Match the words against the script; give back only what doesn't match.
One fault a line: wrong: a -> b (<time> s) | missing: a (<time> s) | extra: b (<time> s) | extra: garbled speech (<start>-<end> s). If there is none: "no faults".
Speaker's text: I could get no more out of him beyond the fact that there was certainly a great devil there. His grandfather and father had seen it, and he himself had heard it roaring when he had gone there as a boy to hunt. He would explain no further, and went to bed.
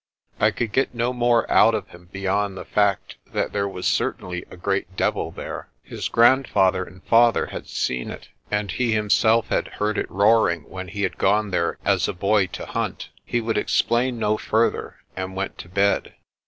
no faults